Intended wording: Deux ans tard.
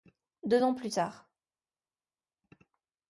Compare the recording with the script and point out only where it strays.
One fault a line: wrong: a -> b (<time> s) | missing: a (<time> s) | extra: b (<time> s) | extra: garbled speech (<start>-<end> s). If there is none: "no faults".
extra: plus (0.7 s)